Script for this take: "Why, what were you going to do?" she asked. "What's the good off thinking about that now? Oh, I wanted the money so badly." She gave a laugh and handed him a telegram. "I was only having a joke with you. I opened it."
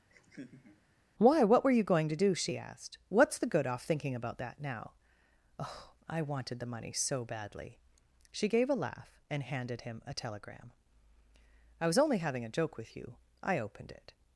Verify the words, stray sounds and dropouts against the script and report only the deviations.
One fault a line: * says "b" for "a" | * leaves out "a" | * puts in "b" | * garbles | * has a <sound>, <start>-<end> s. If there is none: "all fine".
* has a laugh, 0.1-0.8 s